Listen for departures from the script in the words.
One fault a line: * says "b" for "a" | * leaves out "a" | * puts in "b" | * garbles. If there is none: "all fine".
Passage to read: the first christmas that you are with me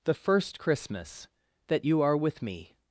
all fine